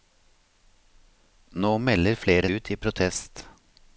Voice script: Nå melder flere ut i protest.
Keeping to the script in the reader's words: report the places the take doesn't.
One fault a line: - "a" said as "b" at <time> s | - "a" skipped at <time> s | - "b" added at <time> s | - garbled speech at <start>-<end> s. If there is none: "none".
none